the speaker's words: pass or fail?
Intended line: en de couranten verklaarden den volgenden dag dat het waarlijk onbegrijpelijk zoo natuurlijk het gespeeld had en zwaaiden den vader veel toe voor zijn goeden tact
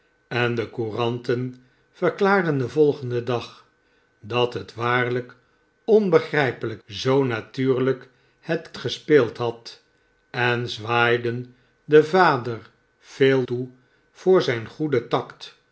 pass